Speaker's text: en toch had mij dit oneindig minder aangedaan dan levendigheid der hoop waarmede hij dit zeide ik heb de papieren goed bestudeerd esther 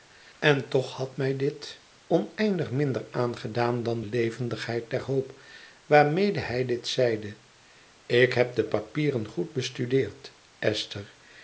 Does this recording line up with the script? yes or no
yes